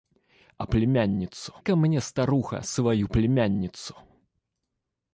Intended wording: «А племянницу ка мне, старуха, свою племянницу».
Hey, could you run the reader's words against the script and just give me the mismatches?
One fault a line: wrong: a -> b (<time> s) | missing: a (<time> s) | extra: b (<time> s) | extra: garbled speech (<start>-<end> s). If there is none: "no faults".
no faults